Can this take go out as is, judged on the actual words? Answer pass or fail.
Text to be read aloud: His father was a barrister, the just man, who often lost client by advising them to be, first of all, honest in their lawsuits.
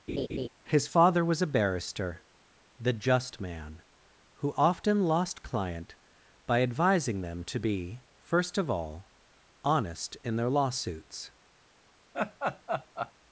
pass